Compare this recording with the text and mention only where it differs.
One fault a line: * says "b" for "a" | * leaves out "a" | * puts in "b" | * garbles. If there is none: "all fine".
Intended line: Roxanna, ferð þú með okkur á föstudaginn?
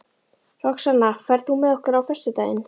all fine